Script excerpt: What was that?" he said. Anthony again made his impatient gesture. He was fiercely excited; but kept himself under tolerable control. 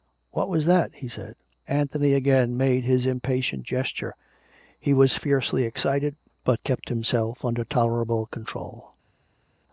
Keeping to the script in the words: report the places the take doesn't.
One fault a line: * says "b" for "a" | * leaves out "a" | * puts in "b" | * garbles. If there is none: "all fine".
all fine